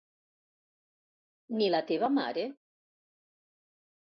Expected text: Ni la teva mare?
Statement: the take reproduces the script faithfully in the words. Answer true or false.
true